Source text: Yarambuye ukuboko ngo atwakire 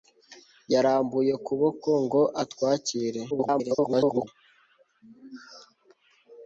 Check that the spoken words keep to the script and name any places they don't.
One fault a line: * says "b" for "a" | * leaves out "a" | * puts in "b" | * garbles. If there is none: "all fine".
* garbles